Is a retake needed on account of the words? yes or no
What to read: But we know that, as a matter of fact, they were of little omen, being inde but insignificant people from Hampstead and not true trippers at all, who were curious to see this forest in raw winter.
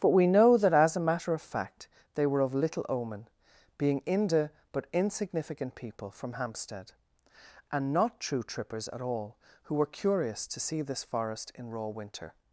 no